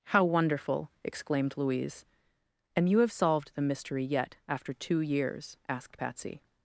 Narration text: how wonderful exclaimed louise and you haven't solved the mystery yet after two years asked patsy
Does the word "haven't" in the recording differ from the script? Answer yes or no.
yes